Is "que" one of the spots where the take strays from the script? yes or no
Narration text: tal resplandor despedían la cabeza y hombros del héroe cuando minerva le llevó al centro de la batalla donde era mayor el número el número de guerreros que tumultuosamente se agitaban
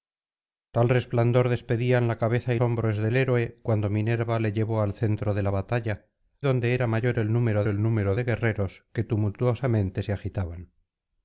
no